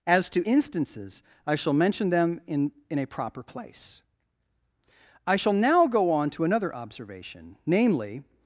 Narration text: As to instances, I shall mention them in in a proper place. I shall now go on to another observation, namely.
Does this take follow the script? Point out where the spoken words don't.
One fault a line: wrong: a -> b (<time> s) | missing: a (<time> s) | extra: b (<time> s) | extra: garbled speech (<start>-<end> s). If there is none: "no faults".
no faults